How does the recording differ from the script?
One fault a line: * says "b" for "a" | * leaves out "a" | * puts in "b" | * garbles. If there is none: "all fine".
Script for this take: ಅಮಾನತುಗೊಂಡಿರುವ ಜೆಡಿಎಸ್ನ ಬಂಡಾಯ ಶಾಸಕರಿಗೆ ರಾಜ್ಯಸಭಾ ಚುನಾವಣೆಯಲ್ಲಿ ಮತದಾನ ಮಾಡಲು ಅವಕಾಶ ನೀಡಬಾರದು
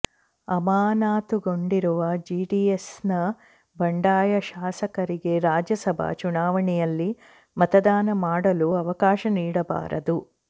all fine